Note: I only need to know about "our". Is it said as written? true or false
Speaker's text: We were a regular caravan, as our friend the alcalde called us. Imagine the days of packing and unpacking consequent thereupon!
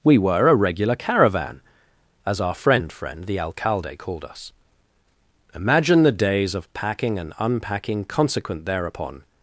true